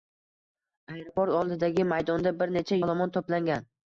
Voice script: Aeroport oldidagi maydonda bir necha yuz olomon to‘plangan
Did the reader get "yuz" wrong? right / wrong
wrong